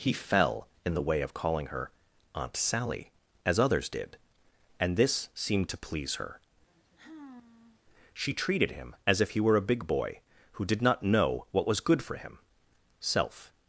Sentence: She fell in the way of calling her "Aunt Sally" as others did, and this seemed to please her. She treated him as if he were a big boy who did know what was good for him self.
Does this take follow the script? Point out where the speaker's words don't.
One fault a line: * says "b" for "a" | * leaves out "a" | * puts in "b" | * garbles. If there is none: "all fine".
* says "He" for "She"
* puts in "not"